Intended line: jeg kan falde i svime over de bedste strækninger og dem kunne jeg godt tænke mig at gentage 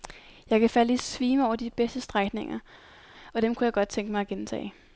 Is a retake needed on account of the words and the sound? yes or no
no